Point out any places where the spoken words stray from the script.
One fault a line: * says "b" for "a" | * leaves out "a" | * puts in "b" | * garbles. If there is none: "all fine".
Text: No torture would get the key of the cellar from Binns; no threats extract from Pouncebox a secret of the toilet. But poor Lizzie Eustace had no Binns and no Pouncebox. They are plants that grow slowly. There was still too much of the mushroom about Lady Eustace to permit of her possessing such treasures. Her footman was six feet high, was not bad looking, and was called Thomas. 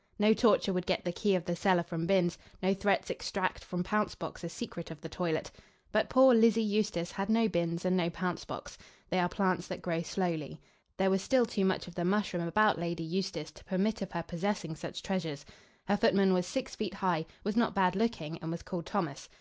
all fine